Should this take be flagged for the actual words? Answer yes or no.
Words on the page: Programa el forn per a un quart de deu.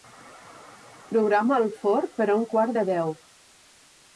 no